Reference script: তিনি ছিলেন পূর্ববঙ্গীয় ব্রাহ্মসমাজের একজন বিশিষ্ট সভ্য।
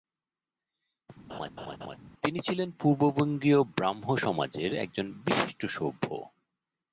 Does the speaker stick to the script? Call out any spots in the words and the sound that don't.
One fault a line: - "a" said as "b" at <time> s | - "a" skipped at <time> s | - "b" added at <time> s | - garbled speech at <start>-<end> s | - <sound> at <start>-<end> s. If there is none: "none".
- laugh at 1.3-2.0 s